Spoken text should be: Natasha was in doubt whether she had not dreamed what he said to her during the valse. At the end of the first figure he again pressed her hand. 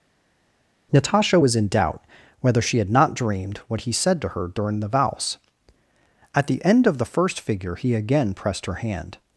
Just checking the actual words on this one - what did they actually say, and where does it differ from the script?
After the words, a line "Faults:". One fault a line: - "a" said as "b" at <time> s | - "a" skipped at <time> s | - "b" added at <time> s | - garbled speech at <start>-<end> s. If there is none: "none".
Natasha was in doubt whether she had not dreamed what he said to her during the valse. At the end of the first figure he again pressed her hand.
Faults:
none